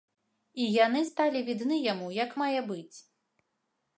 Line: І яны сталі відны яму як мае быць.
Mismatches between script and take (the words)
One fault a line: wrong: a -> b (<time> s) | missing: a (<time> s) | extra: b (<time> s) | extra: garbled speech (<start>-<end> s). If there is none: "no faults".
no faults